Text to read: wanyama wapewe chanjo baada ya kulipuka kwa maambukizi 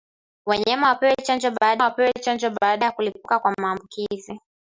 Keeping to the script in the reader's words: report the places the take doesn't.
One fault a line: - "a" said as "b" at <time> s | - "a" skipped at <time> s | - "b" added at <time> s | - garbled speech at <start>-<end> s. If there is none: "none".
- "wapewe chanjo baada" added at 1.8 s